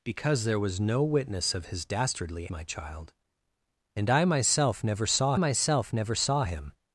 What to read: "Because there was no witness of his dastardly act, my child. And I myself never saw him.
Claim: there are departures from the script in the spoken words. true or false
true